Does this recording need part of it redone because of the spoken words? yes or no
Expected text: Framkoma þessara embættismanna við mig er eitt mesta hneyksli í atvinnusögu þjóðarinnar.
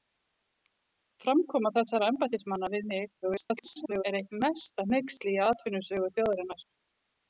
yes